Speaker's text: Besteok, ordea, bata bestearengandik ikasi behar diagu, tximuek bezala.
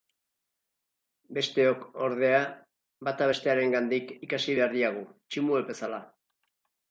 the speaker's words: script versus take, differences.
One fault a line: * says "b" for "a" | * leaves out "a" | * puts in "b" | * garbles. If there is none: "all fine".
all fine